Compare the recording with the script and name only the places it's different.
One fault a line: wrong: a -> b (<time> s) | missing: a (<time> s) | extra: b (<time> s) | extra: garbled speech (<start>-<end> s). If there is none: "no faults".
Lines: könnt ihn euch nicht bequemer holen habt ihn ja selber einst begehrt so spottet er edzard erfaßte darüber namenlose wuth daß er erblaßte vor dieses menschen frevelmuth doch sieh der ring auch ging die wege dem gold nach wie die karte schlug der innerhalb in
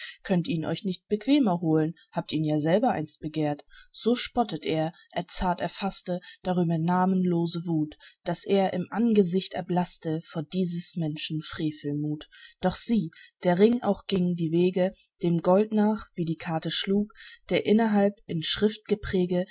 extra: im angesicht (8.7 s)